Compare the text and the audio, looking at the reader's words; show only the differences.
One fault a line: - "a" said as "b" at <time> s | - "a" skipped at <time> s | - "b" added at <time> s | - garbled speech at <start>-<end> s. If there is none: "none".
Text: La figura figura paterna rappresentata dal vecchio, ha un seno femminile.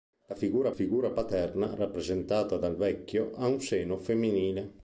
none